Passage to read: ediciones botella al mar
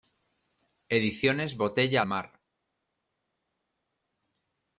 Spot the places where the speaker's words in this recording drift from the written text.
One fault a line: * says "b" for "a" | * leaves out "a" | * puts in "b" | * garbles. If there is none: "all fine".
* leaves out "al"